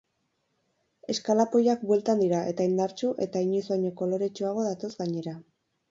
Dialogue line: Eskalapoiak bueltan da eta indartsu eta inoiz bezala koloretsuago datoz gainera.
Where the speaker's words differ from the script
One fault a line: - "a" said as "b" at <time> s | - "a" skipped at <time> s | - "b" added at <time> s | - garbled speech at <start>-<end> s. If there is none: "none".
- "da" said as "dira" at 2.2 s
- "bezala" said as "baino" at 3.7 s